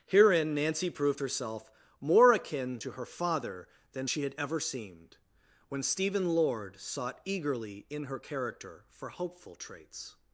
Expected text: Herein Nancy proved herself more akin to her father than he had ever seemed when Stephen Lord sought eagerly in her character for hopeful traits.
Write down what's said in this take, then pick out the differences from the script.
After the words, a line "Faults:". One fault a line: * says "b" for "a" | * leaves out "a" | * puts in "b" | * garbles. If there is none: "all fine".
Herein Nancy proved herself more akin to her father than she had ever seemed when Stephen Lord sought eagerly in her character for hopeful traits.
Faults:
* says "she" for "he"